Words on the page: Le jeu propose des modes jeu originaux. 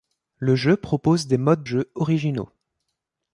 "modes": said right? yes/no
yes